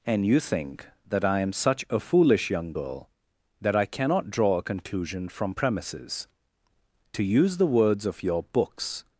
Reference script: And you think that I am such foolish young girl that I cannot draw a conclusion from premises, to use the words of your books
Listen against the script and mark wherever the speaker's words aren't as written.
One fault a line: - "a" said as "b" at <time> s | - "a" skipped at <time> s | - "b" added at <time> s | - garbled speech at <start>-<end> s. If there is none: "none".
- "a" added at 1.9 s